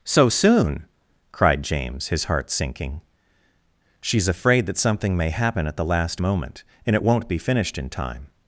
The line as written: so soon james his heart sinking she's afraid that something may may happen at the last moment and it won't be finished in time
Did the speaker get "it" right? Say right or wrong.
right